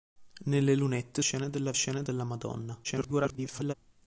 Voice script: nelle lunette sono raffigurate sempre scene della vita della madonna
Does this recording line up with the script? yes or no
no